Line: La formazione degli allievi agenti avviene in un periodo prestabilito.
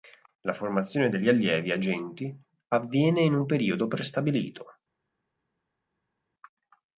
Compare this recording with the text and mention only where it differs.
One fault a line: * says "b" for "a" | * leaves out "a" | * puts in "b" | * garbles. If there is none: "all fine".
all fine